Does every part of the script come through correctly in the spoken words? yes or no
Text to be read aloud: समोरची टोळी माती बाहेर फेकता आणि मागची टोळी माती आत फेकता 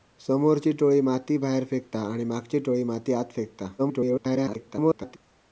no